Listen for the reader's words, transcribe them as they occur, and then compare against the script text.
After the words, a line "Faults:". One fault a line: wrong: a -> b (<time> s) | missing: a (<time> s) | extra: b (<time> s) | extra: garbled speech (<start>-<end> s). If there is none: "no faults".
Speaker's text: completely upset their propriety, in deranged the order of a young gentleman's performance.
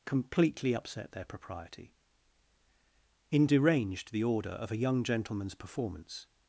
completely upset their propriety, in deranged the order of a young gentleman's performance.
Faults:
no faults